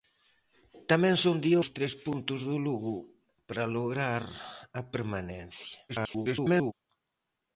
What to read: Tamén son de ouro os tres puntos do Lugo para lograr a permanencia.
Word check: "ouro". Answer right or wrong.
wrong